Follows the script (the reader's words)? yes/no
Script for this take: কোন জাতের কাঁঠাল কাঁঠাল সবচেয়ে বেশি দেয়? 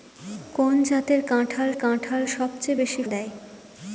yes